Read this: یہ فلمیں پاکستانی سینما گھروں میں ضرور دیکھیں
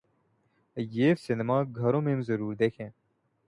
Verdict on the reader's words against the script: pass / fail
fail